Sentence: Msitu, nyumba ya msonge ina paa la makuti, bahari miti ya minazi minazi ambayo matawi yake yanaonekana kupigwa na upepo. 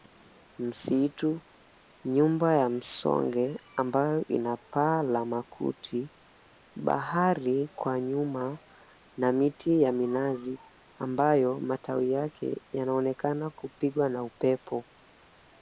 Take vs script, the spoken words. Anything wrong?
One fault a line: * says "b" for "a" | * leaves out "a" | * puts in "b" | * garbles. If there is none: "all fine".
* puts in "ambayo"
* puts in "kwa nyuma na"
* leaves out "minazi"